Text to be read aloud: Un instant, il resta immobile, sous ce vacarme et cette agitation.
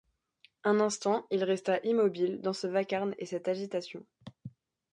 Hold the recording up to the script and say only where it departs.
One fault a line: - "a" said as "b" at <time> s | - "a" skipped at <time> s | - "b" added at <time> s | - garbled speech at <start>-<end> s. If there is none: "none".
- "sous" said as "dans" at 2.4 s